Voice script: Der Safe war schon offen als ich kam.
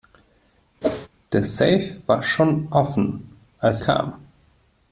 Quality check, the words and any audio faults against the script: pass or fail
fail